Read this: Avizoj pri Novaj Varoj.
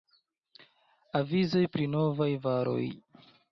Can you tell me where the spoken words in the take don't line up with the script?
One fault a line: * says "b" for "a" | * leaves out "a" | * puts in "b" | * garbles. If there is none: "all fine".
all fine